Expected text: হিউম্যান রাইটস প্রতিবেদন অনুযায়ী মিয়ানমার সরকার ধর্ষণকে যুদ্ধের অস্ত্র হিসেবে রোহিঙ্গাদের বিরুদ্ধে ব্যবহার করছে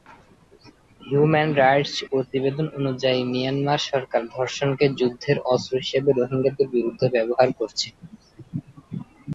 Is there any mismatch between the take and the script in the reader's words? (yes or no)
no